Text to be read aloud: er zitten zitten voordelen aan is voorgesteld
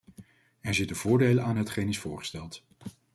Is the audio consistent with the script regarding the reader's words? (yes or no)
no